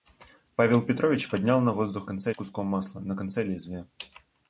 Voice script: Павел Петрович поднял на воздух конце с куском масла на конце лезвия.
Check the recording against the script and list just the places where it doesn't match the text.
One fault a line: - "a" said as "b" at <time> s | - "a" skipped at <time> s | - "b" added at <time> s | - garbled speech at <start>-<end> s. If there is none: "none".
none